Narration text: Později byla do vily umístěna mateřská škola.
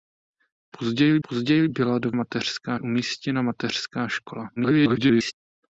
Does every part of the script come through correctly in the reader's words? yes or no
no